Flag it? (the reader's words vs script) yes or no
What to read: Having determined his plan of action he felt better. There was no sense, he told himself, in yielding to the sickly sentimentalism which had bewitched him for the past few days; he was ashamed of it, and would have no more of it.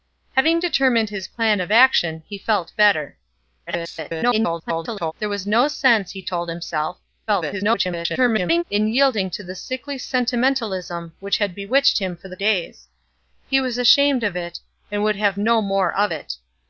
yes